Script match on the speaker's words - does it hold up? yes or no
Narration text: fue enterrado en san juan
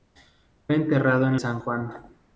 yes